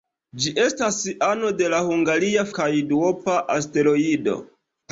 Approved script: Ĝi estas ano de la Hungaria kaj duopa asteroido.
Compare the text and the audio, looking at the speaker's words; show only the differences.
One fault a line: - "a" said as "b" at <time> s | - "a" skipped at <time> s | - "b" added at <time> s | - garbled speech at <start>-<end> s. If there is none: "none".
none